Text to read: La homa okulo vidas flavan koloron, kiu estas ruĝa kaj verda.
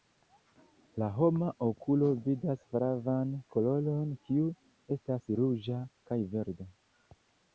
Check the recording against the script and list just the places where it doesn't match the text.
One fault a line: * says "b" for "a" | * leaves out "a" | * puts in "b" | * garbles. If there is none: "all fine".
all fine